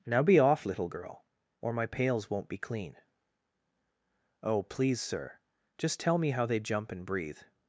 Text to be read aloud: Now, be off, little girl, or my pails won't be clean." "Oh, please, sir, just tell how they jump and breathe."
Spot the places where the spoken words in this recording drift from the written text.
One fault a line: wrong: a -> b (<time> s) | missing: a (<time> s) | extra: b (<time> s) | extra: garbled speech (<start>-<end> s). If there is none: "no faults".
extra: me (6.2 s)